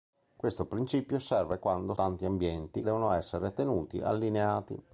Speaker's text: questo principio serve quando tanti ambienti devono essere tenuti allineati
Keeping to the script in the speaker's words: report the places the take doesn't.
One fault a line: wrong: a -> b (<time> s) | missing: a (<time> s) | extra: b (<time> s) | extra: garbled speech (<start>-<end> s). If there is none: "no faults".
no faults